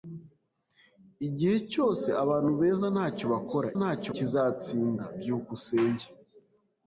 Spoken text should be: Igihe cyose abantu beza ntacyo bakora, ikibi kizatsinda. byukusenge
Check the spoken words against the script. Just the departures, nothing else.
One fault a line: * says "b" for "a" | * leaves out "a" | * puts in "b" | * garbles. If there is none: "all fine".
* says "ntacyo" for "ikibi"